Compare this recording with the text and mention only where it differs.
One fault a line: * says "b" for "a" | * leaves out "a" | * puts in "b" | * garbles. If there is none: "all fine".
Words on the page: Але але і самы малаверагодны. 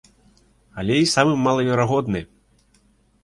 * leaves out "але"